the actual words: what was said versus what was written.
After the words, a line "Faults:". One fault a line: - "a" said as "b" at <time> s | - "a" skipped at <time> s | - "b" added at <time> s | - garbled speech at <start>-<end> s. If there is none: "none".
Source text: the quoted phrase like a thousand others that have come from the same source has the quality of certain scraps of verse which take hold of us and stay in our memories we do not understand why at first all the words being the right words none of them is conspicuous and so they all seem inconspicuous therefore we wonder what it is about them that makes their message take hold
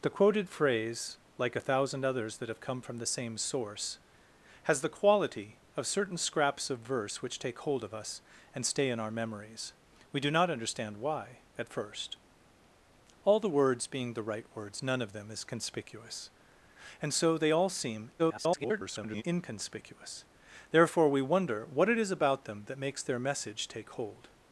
the quoted phrase like a thousand others that have come from the same source has the quality of certain scraps of verse which take hold of us and stay in our memories we do not understand why at first all the words being the right words none of them is conspicuous and so they all seem [garbled] inconspicuous therefore we wonder what it is about them that makes their message take hold
Faults:
- garbled speech at 18.2-19.2 s